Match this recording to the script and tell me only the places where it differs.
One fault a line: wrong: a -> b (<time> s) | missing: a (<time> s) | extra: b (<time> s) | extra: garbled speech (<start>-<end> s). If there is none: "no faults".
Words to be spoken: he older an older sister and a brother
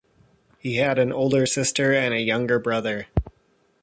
wrong: older -> had (0.8 s)
extra: younger (2.2 s)